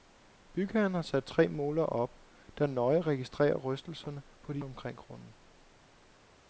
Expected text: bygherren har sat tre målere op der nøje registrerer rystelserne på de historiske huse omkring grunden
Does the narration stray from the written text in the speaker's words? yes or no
yes